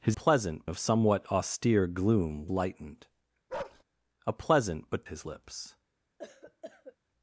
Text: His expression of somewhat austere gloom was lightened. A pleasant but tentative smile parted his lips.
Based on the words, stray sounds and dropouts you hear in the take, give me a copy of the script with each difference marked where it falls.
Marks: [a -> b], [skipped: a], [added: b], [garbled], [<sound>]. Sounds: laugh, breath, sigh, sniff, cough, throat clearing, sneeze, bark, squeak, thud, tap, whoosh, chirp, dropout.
His [expression -> pleasant] of somewhat austere gloom [skipped: was] lightened. [bark] A pleasant but [skipped: tentative smile parted] his lips. [cough]